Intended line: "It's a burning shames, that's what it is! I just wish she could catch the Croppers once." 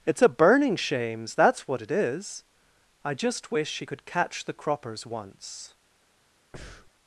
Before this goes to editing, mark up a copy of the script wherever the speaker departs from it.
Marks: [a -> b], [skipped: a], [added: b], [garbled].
"It's a burning shames, that's what it is! I just wish she could catch the Croppers once."